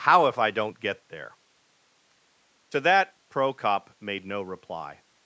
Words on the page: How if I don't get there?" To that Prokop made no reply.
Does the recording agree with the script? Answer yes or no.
yes